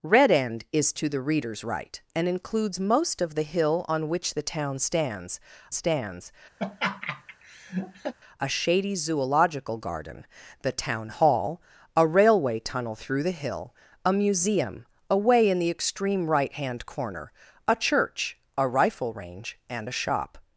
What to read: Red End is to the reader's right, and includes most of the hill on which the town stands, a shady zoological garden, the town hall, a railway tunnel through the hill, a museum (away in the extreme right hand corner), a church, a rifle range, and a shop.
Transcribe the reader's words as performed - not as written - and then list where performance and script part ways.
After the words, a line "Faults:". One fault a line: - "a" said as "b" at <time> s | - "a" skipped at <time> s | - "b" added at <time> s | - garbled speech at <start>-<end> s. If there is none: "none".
Red End is to the reader's right, and includes most of the hill on which the town stands stands, a shady zoological garden, the town hall, a railway tunnel through the hill, a museum (away in the extreme right hand corner), a church, a rifle range, and a shop.
Faults:
- "stands" added at 5.7 s